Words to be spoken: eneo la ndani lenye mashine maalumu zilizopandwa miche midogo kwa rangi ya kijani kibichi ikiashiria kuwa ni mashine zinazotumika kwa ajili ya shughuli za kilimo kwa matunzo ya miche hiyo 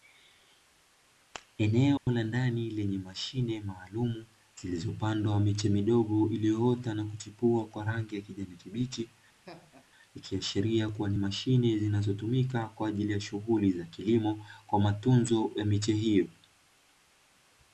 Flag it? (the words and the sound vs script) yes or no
yes